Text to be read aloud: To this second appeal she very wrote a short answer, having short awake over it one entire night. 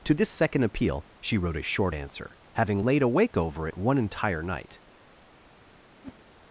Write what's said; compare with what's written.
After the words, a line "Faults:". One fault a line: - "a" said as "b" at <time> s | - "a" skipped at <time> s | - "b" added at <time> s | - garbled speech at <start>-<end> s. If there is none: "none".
To this second appeal she wrote a short answer, having laid awake over it one entire night.
Faults:
- "very" skipped at 1.4 s
- "short" said as "laid" at 2.8 s